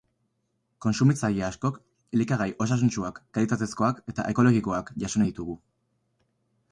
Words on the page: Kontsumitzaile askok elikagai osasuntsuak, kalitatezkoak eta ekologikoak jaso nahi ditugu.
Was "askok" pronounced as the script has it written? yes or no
yes